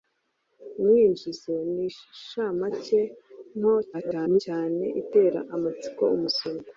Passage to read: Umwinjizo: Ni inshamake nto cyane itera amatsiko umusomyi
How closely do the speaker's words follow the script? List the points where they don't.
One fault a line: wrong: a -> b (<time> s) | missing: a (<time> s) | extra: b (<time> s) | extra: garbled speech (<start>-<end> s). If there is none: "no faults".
extra: garbled speech (3.9-4.4 s)